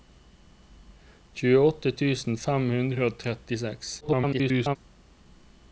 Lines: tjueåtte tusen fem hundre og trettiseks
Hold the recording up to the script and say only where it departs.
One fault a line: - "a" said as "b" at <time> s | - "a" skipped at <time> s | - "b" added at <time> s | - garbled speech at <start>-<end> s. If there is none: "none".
- garbled speech at 4.0-4.8 s